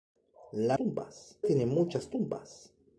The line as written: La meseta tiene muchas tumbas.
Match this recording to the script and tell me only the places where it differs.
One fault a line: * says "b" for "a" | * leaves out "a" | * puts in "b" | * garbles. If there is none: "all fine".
* says "tumbas" for "meseta"